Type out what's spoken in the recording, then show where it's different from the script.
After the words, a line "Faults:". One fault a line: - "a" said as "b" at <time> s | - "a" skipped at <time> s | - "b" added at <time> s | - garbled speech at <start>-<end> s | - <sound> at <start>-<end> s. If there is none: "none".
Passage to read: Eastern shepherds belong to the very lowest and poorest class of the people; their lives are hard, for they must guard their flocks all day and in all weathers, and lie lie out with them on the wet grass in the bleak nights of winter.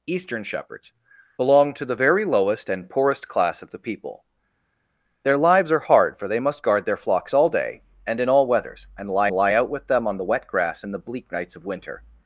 Eastern shepherds belong to the very lowest and poorest class of the people; their lives are hard, for they must guard their flocks all day and in all weathers, and lie lie out with them on the wet grass in the bleak nights of winter.
Faults:
none